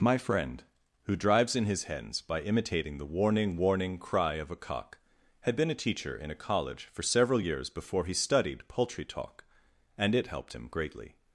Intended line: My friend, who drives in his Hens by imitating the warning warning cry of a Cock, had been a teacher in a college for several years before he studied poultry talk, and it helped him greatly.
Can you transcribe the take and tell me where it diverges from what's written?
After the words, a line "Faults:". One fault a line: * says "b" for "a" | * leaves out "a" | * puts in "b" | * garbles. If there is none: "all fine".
My friend, who drives in his Hens by imitating the warning warning cry of a Cock, had been a teacher in a college for several years before he studied poultry talk, and it helped him greatly.
Faults:
all fine